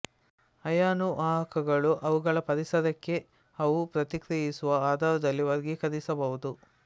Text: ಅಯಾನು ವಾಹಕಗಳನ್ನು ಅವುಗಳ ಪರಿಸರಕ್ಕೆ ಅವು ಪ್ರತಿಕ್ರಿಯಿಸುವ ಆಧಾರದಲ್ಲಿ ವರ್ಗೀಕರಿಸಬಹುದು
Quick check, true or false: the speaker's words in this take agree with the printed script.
true